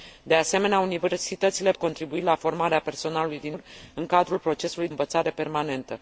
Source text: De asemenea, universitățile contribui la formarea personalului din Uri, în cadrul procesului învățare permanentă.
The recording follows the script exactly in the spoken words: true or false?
true